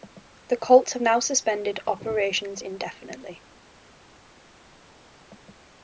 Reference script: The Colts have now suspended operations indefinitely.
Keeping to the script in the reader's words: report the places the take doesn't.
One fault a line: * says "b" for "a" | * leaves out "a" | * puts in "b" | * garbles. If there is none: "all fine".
all fine